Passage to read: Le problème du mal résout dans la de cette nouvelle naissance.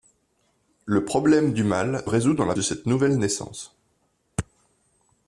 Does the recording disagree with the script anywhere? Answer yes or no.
no